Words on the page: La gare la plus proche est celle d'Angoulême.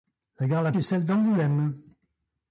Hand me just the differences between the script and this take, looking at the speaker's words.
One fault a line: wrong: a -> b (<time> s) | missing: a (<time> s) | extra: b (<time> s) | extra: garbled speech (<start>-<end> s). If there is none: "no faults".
missing: plus proche (0.7 s)